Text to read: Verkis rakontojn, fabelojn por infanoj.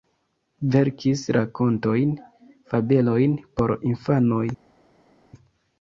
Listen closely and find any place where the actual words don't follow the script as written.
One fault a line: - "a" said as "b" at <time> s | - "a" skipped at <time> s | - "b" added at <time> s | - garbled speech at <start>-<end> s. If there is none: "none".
none